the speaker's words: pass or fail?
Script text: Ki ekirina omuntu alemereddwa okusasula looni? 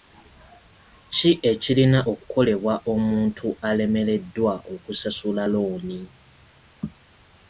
fail